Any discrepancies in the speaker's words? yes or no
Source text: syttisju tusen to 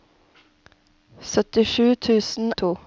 no